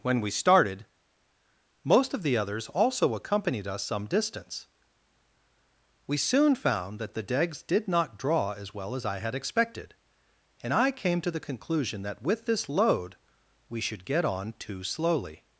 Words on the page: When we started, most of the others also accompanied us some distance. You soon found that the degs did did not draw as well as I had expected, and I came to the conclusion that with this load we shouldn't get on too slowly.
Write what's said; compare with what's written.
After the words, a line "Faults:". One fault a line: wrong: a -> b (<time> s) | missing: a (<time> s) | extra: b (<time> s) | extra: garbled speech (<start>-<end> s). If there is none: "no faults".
When we started, most of the others also accompanied us some distance. We soon found that the degs did not draw as well as I had expected, and I came to the conclusion that with this load we should get on too slowly.
Faults:
wrong: You -> We (6.1 s)
missing: did (7.9 s)
wrong: shouldn't -> should (13.8 s)